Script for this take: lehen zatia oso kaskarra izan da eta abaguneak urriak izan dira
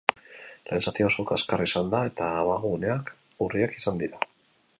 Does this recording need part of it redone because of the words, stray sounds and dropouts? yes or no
no